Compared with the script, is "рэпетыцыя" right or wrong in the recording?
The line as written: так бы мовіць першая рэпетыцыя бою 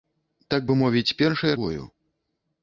wrong